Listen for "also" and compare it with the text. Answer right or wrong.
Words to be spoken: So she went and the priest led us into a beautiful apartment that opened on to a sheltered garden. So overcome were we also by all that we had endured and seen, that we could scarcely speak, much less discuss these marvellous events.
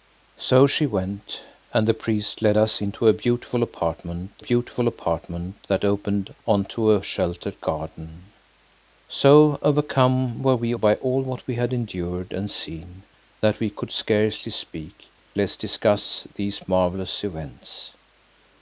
wrong